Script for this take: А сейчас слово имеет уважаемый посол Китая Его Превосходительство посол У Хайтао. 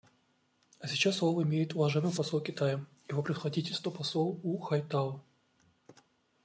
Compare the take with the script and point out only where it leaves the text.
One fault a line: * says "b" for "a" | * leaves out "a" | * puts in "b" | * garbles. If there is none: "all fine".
all fine